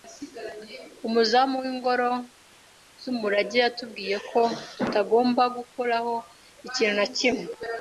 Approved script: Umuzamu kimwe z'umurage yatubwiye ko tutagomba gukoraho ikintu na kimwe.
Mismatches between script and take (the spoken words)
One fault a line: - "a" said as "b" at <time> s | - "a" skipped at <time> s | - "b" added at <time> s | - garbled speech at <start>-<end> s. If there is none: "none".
- "kimwe" said as "w'ingoro" at 1.6 s